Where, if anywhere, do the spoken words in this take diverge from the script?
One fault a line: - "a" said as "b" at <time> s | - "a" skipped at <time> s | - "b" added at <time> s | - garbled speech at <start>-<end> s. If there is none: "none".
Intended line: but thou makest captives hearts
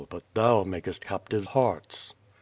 none